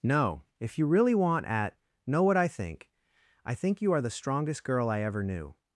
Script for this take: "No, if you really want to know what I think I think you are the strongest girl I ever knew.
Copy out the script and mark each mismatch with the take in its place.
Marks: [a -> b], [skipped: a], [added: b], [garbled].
"No, if you really want [to -> at] know what I think I think you are the strongest girl I ever knew.